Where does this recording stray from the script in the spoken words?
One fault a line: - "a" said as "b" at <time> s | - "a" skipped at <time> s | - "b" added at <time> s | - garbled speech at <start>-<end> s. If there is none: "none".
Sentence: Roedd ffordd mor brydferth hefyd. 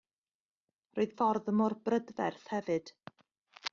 none